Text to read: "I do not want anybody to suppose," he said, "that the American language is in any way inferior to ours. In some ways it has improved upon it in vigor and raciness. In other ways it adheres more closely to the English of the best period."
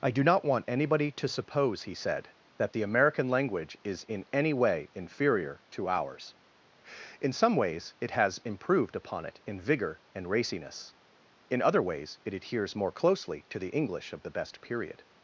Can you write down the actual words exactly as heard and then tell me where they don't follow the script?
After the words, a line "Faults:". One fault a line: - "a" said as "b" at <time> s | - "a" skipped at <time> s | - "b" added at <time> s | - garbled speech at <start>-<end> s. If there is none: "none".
"I do not want anybody to suppose," he said, "that the American language is in any way inferior to ours. In some ways it has improved upon it in vigor and raciness. In other ways it adheres more closely to the English of the best period."
Faults:
none